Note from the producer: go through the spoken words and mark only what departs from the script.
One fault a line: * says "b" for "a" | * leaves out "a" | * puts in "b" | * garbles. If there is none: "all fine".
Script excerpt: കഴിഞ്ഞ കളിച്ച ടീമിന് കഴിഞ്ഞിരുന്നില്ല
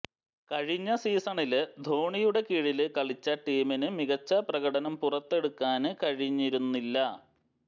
* puts in "സീസണില് ധോണിയുടെ കീഴില്"
* puts in "മികച്ച പ്രകടനം പുറത്തെടുക്കാന്"